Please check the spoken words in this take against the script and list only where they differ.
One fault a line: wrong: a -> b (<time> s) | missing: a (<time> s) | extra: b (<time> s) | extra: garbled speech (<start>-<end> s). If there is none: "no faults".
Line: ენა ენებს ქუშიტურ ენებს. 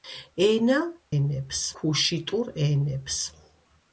no faults